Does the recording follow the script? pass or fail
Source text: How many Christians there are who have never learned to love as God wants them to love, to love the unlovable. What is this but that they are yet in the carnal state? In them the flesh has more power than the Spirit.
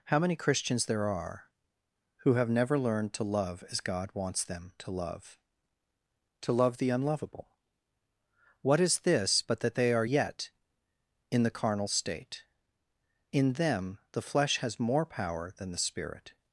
pass